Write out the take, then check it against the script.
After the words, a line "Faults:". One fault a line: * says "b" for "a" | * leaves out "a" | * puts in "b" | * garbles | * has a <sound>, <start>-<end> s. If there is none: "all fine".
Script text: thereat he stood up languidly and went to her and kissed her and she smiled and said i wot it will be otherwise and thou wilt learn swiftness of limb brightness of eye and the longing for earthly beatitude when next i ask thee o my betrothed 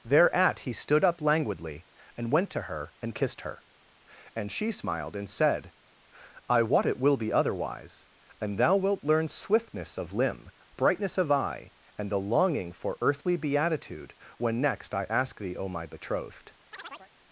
thereat he stood up languidly and went to her and kissed her and she smiled and said i wot it will be otherwise and thou wilt learn swiftness of limb brightness of eye and the longing for earthly beatitude when next i ask thee o my betrothed
Faults:
* has a chirp, 16.7-17.1 s